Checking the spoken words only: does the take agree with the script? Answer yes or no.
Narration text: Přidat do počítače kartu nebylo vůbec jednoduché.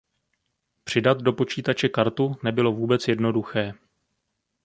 yes